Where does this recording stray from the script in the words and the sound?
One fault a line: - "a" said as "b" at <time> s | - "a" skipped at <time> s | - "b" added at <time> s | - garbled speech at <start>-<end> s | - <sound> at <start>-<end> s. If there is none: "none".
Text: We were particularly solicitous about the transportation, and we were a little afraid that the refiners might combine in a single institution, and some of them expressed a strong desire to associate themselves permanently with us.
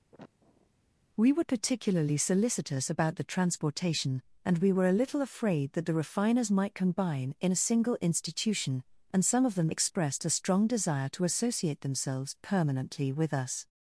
- sniff at 0.1-0.7 s